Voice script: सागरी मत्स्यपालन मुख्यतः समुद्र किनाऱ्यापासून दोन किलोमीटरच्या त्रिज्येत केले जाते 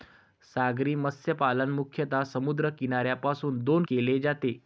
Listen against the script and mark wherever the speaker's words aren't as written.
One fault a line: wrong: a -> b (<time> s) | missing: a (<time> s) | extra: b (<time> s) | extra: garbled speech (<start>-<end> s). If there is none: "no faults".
missing: किलोमीटरच्या त्रिज्येत (3.8 s)